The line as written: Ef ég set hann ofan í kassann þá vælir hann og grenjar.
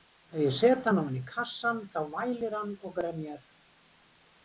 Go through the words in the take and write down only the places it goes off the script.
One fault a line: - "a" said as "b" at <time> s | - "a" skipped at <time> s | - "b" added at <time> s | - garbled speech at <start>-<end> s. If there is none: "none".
none